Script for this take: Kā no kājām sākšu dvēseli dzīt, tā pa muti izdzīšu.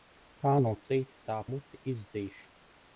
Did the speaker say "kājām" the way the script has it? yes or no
no